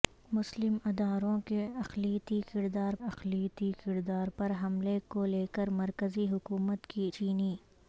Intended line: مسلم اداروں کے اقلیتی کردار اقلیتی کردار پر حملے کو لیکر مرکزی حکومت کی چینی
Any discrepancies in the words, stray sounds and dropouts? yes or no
no